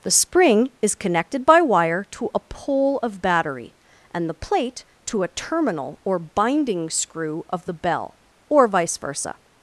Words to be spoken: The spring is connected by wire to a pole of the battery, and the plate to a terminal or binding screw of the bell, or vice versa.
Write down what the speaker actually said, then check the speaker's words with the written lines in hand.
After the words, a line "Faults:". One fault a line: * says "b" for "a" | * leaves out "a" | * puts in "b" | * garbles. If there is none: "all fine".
The spring is connected by wire to a pole of battery, and the plate to a terminal or binding screw of the bell, or vice versa.
Faults:
* leaves out "the"